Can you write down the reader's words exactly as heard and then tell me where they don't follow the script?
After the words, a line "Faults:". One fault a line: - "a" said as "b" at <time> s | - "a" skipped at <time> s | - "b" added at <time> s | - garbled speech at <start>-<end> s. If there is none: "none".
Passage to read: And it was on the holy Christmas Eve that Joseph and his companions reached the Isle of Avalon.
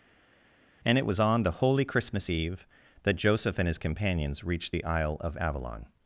And it was on the holy Christmas Eve that Joseph and his companions reached the Isle of Avalon.
Faults:
none